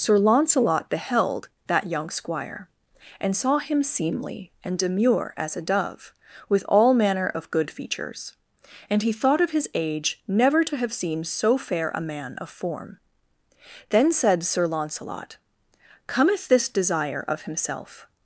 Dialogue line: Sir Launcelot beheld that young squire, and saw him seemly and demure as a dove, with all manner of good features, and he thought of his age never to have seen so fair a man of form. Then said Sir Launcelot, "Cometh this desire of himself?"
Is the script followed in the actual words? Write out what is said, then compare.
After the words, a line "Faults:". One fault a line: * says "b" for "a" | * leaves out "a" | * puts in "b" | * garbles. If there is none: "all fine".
Sir Launcelot beheld that young squire, and saw him seemly and demure as a dove, with all manner of good features, and he thought of his age never to have seen so fair a man of form. Then said Sir Launcelot, "Cometh this desire of himself?"
Faults:
all fine